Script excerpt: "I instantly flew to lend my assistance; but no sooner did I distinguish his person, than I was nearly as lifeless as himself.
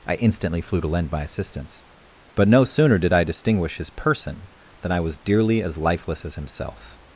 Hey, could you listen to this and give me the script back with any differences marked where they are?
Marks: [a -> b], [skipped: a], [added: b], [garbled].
"I instantly flew to lend my assistance; but no sooner did I distinguish his person, than I was [nearly -> dearly] as lifeless as himself.